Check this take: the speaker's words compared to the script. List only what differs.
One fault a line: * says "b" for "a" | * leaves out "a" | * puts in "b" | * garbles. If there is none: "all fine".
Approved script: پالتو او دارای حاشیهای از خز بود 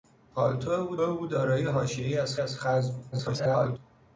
* puts in "او"
* puts in "از"
* garbles